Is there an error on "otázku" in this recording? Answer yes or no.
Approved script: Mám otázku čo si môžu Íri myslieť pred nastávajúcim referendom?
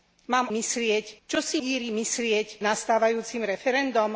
yes